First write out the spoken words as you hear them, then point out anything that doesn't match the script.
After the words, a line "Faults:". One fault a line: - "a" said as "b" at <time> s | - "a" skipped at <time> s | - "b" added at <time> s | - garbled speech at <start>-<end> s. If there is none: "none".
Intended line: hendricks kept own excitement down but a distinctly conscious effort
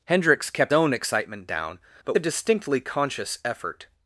hendricks kept own excitement down but a distinctly conscious effort
Faults:
none